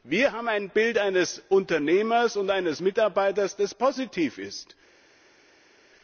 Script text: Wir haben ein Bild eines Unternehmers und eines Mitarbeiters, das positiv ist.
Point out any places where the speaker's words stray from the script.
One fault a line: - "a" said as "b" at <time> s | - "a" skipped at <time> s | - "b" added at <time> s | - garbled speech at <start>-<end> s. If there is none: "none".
none